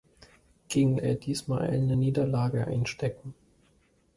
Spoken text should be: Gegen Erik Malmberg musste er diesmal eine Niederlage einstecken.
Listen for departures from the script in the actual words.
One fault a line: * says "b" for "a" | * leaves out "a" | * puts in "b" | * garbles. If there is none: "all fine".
* leaves out "Erik Malmberg musste"